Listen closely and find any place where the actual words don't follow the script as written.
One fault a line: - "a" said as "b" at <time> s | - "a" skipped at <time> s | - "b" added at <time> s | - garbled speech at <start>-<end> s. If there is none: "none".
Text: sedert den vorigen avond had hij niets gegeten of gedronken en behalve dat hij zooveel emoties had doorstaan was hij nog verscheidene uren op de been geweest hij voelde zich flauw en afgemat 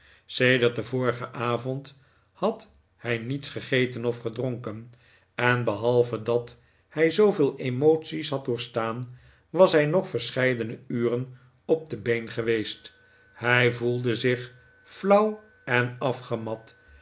none